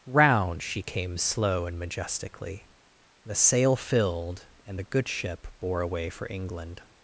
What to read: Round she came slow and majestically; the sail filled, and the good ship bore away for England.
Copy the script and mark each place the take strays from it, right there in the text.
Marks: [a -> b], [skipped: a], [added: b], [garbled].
Round she came slow and majestically; the sail filled, and the good ship bore away for England.